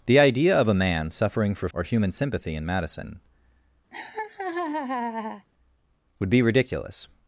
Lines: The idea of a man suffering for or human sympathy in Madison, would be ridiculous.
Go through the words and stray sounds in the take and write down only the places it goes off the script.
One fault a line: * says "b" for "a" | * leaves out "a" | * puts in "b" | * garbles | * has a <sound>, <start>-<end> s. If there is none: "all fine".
* has a laugh, 3.9-5.5 s